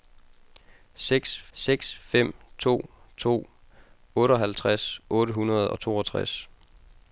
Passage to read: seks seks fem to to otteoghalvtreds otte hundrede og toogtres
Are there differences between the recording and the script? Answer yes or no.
no